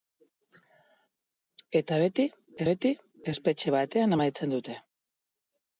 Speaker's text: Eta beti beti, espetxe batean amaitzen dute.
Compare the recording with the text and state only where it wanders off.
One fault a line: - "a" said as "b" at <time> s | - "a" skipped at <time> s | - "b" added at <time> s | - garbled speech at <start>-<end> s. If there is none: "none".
none